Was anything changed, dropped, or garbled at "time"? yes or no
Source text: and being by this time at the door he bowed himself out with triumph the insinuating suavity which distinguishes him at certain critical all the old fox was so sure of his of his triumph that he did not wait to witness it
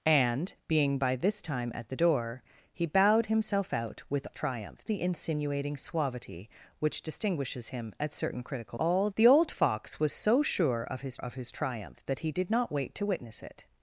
no